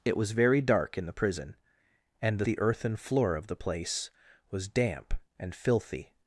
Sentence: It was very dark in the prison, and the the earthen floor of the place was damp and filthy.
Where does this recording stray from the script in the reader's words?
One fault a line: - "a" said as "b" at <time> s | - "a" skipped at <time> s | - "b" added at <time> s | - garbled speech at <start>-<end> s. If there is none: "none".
none